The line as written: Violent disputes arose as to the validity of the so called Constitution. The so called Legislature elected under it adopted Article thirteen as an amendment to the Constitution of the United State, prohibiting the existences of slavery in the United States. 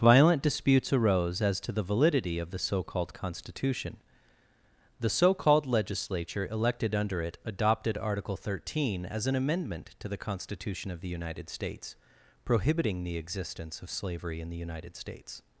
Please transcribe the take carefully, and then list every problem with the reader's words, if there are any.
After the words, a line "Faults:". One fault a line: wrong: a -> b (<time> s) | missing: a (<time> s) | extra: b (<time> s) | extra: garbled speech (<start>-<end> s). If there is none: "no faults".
Violent disputes arose as to the validity of the so called Constitution. The so called Legislature elected under it adopted Article thirteen as an amendment to the Constitution of the United States, prohibiting the existence of slavery in the United States.
Faults:
wrong: State -> States (11.5 s)
wrong: existences -> existence (13.2 s)